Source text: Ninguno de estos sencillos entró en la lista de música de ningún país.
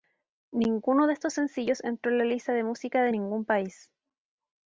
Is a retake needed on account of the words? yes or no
no